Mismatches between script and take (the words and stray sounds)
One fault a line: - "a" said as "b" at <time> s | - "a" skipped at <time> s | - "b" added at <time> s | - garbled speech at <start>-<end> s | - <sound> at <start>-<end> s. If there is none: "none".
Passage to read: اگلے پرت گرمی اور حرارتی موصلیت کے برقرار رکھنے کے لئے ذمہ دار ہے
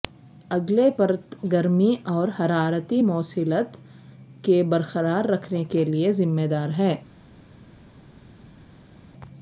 none